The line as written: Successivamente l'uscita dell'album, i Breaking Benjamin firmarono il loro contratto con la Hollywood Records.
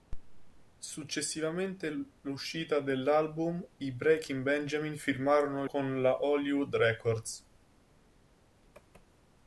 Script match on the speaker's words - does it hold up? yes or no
no